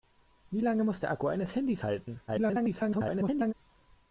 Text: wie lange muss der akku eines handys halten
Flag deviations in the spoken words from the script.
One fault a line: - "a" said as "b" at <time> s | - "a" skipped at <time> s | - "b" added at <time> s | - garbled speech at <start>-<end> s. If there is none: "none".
- garbled speech at 2.3-3.5 s